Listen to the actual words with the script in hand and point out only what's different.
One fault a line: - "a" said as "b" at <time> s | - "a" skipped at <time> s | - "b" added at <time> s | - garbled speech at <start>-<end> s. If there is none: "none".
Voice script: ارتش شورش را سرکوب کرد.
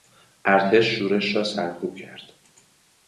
none